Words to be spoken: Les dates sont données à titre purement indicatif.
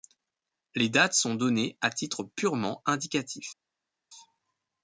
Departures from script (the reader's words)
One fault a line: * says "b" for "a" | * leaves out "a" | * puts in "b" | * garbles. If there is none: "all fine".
all fine